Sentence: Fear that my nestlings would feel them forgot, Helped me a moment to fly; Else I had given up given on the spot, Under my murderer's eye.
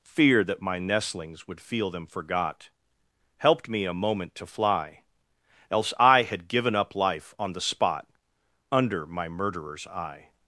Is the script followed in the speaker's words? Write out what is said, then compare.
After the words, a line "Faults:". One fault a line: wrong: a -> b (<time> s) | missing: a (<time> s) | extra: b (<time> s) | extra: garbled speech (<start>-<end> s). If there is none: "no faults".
Fear that my nestlings would feel them forgot, Helped me a moment to fly; Else I had given up life on the spot, Under my murderer's eye.
Faults:
wrong: given -> life (6.9 s)